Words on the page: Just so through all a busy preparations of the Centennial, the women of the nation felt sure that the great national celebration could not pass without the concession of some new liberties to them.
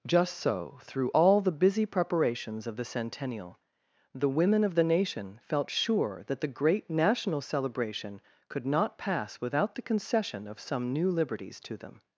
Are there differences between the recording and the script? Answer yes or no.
yes